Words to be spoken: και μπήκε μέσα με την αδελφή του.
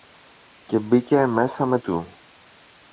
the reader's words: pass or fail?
fail